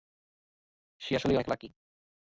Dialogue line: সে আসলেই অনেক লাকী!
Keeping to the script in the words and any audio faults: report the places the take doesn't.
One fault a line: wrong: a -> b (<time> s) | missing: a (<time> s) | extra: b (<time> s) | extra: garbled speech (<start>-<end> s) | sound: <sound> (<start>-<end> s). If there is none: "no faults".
no faults